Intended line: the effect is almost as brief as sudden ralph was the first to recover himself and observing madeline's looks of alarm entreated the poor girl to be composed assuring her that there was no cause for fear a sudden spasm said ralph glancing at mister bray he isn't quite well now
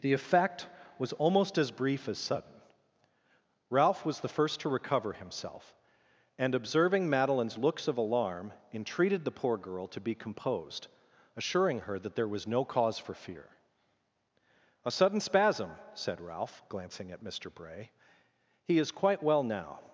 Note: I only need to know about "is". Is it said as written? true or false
false